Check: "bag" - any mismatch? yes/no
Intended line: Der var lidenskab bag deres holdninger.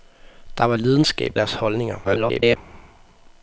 yes